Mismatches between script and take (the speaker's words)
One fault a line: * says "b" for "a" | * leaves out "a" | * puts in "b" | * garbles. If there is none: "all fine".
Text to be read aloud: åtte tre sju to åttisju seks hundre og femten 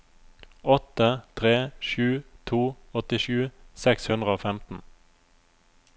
all fine